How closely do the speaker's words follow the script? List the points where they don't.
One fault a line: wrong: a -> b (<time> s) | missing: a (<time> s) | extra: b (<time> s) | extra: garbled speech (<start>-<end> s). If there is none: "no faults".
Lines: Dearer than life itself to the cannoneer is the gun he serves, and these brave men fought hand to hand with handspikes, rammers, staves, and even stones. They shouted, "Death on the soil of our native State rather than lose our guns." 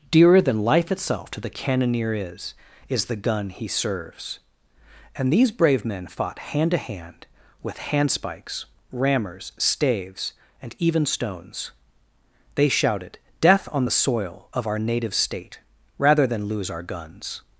extra: is (2.9 s)